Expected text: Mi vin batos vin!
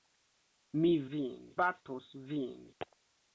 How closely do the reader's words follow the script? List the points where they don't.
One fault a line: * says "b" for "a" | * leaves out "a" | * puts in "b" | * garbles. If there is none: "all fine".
all fine